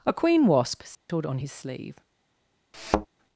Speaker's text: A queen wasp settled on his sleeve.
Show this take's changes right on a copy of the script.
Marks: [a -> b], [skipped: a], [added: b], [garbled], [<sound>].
A queen wasp settled [dropout] on his sleeve. [thud]